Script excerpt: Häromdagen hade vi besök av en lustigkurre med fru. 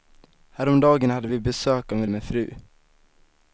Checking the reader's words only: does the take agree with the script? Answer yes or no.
no